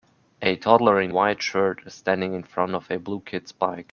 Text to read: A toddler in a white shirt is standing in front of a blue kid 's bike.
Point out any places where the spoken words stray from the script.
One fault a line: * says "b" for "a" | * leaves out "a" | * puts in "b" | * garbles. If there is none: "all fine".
* leaves out "a"